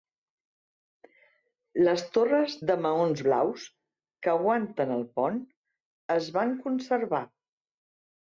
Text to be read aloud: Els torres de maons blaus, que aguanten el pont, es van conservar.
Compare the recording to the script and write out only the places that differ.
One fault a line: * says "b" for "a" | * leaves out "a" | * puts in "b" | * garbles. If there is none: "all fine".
* says "Les" for "Els"